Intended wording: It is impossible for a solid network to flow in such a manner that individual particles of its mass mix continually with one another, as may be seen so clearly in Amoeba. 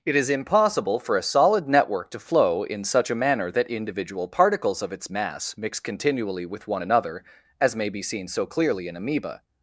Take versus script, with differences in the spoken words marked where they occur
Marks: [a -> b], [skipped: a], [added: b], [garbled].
It is impossible for a solid network to flow in such a manner that individual particles of its mass mix continually with one another, as may be seen so clearly in Amoeba.